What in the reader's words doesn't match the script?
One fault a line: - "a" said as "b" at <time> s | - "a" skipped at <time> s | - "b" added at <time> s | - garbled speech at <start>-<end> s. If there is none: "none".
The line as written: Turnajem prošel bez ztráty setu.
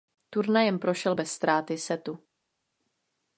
none